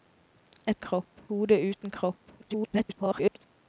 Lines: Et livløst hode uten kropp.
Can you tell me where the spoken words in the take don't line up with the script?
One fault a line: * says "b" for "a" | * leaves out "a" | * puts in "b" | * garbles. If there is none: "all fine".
* says "kropp" for "livløst"
* garbles